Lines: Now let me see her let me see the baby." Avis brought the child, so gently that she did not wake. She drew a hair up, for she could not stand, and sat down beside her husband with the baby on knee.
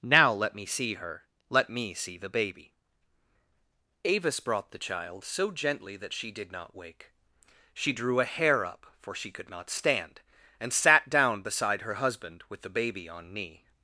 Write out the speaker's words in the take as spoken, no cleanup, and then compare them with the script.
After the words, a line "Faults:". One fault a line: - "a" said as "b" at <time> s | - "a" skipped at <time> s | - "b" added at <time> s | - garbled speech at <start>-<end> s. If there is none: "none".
Now let me see her let me see the baby." Avis brought the child, so gently that she did not wake. She drew a hair up, for she could not stand, and sat down beside her husband with the baby on knee.
Faults:
none